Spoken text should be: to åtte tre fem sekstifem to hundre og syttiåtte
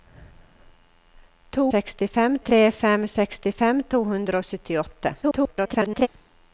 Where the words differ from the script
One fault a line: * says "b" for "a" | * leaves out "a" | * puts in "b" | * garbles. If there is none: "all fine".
* says "sekstifem" for "åtte"
* garbles